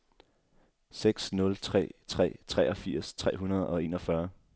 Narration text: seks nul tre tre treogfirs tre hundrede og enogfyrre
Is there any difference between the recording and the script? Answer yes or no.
no